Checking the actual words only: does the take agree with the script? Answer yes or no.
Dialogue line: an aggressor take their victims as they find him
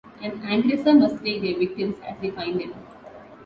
no